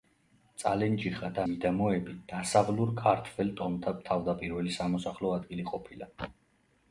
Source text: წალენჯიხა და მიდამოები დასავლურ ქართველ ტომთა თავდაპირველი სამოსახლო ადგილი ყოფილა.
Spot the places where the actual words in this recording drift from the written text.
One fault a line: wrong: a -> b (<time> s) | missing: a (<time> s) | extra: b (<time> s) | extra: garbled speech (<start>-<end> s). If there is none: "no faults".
no faults